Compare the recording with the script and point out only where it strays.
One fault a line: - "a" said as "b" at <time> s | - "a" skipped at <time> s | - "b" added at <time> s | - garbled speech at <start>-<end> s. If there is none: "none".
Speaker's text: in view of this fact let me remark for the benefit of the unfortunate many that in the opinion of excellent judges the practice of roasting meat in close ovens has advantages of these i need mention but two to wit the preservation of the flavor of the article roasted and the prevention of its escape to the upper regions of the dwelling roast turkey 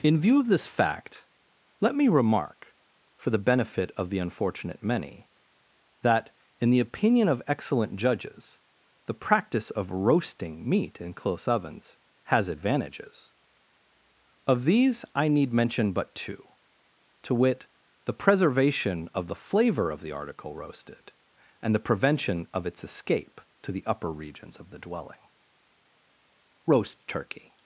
none